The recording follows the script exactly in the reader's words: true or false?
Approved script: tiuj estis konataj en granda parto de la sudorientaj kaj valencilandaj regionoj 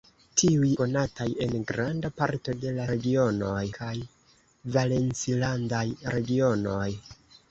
false